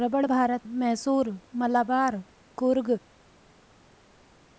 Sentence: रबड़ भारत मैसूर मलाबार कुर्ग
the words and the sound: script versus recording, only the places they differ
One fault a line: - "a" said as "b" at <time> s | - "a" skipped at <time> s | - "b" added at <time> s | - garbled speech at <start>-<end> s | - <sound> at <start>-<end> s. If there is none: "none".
none